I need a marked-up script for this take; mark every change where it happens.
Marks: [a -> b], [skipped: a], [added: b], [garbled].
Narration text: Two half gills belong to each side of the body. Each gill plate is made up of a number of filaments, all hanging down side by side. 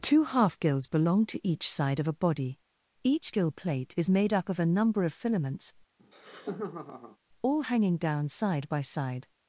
Two half gills belong to each side of [the -> a] body. Each gill plate is made up of a number of filaments, all hanging down side by side.